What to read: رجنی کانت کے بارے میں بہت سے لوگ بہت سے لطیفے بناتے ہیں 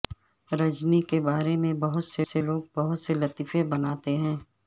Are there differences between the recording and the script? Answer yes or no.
yes